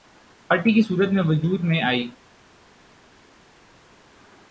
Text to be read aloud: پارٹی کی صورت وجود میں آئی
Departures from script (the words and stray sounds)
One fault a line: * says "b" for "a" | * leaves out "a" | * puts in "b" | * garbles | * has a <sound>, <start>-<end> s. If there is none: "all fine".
* puts in "میں"